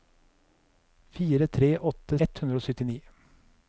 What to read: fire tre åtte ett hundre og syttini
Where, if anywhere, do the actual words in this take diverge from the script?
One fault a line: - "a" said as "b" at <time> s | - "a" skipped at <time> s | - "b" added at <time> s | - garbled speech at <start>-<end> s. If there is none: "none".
none